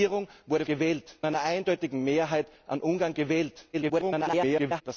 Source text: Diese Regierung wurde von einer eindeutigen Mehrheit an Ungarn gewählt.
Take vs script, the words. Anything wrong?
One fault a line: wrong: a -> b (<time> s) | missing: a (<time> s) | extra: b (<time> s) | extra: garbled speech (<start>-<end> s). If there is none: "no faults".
wrong: von -> gewählt (0.6 s)
extra: garbled speech (3.7-4.8 s)